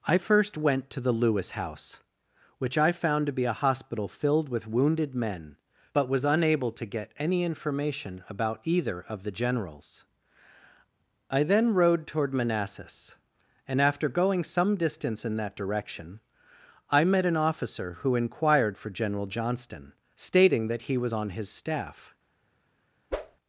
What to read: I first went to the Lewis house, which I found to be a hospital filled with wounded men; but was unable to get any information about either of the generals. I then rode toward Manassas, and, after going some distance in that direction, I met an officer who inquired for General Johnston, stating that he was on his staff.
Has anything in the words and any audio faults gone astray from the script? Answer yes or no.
yes